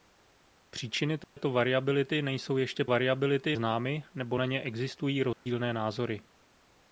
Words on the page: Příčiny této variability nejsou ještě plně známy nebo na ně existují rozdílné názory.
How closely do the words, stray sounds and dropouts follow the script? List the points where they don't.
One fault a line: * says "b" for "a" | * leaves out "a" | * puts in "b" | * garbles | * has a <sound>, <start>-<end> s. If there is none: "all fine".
* has a dropout, 1.2-1.4 s
* says "variability" for "plně"
* has a dropout, 5.3-5.5 s